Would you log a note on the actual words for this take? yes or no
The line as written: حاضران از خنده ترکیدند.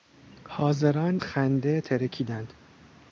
yes